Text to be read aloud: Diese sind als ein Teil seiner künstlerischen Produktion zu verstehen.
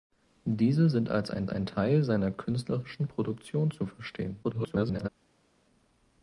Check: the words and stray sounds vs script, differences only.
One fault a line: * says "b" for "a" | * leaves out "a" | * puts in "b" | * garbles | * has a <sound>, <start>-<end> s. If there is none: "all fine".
* puts in "ein"
* garbles